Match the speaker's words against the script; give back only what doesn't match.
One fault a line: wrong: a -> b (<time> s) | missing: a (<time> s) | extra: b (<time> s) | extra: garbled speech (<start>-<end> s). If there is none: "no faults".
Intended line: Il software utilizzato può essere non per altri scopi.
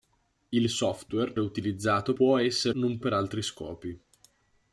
no faults